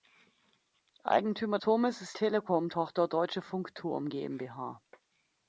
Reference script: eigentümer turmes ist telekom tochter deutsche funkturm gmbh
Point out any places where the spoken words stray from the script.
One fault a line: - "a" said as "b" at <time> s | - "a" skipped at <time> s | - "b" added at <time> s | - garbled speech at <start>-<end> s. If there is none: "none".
none